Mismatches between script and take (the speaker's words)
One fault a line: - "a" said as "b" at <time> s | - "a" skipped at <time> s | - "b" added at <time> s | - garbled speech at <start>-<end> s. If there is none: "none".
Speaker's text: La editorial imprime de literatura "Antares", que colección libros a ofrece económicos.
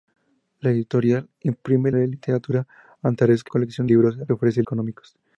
none